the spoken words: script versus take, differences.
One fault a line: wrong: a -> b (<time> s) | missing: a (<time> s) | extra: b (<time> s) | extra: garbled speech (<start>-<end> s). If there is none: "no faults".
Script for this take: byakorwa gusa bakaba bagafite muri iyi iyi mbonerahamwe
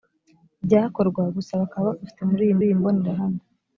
no faults